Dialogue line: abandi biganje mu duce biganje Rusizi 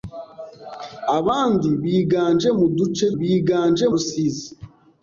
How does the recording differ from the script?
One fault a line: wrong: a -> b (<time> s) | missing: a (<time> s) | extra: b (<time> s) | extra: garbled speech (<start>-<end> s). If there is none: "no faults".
no faults